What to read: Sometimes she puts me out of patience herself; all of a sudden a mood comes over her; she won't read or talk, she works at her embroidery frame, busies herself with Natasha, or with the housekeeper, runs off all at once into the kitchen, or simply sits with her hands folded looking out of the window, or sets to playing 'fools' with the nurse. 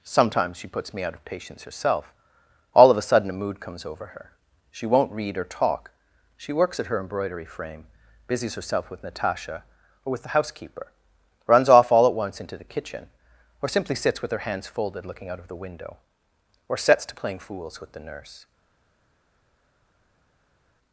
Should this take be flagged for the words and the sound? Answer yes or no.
no